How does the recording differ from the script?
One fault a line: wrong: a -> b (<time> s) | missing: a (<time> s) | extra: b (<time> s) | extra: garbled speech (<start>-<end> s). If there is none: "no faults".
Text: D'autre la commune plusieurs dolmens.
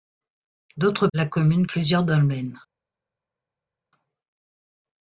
no faults